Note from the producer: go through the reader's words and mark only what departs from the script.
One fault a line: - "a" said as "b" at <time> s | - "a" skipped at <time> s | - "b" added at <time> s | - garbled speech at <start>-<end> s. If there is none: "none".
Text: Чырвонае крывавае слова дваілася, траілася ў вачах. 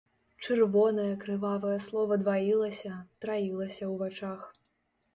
none